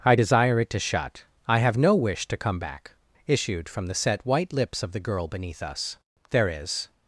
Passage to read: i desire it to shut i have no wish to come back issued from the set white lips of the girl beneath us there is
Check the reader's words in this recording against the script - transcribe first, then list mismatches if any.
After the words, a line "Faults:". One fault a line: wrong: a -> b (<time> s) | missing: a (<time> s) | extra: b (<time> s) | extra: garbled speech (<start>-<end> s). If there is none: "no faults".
i desire it to shut i have no wish to come back issued from the set white lips of the girl beneath us there is
Faults:
no faults